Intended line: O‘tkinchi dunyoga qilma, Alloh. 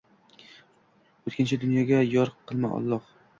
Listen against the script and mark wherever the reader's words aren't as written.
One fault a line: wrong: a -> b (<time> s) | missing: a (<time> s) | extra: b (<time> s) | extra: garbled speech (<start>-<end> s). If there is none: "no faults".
extra: yor (2.1 s)